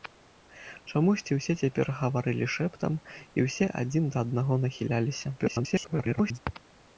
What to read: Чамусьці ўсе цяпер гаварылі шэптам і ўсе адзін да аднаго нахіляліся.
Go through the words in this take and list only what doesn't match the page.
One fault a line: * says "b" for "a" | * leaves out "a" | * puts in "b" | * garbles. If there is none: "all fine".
* garbles